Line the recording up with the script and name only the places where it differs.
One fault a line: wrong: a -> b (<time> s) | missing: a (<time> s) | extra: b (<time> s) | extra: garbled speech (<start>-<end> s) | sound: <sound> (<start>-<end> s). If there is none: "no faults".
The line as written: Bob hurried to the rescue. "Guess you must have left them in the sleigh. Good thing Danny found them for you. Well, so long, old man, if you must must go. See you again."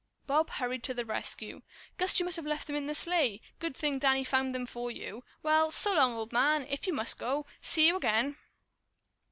missing: must (7.2 s)